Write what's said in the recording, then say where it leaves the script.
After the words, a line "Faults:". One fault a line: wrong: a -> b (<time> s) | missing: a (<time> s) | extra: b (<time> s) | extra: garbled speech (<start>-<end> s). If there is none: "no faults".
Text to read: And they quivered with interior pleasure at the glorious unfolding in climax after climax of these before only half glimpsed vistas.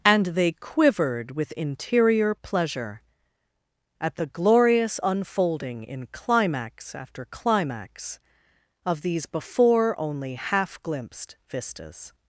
And they quivered with interior pleasure at the glorious unfolding in climax after climax of these before only half glimpsed vistas.
Faults:
no faults